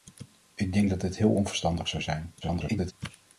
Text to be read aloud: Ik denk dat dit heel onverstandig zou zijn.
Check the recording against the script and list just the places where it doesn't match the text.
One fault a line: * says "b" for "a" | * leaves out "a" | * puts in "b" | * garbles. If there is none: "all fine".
* garbles